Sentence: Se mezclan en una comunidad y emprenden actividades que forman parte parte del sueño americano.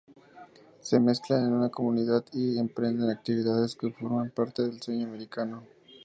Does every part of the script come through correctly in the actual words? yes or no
no